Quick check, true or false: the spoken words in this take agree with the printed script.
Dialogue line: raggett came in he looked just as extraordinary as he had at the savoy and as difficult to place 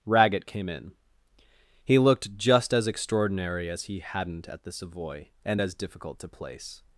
false